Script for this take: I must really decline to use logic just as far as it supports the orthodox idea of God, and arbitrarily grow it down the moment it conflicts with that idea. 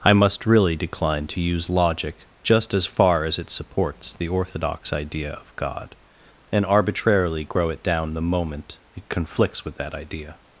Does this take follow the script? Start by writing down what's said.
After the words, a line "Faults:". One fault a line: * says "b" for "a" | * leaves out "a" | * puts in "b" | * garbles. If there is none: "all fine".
I must really decline to use logic just as far as it supports the orthodox idea of God, and arbitrarily grow it down the moment it conflicts with that idea.
Faults:
all fine